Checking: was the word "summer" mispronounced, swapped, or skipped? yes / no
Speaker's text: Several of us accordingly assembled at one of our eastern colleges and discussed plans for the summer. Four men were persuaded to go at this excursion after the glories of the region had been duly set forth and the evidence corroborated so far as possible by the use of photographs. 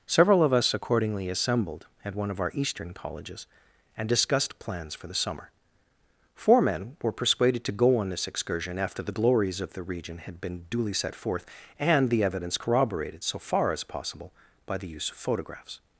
no